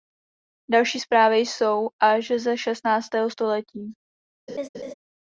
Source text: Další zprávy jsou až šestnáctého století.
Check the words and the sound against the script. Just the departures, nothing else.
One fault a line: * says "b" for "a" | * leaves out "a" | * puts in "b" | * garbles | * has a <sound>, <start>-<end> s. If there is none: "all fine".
* puts in "ze"
* has a laugh, 4.5-4.9 s